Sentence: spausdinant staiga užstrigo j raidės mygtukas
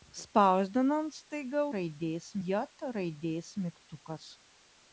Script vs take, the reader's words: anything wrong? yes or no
yes